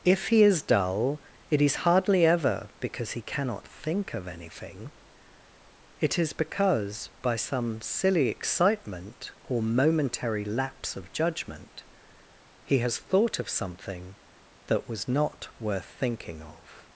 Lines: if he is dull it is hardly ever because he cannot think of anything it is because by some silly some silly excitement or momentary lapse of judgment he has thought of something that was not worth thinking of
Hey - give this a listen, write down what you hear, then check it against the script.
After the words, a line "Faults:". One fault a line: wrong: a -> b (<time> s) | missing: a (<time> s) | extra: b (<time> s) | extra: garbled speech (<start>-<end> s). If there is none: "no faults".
if he is dull it is hardly ever because he cannot think of anything it is because by some silly excitement or momentary lapse of judgment he has thought of something that was not worth thinking of
Faults:
missing: some silly (8.3 s)